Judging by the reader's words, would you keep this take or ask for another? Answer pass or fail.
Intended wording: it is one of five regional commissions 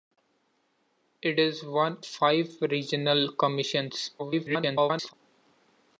fail